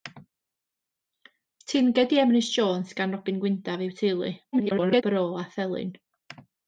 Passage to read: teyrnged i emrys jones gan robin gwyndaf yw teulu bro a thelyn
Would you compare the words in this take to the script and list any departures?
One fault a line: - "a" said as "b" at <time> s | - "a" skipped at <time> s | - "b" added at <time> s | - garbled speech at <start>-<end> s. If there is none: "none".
- garbled speech at 4.5-5.0 s